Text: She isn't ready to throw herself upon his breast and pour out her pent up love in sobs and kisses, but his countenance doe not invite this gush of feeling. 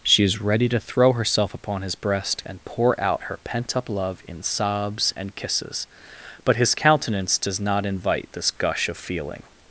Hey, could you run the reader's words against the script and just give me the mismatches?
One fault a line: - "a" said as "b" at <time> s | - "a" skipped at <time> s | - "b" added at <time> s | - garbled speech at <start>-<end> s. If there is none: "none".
- "isn't" said as "is" at 0.2 s
- "doe" said as "does" at 7.4 s